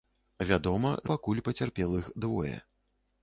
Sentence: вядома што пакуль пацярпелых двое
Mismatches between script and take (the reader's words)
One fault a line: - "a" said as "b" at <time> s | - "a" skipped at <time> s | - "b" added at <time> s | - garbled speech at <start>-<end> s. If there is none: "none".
- "што" skipped at 0.9 s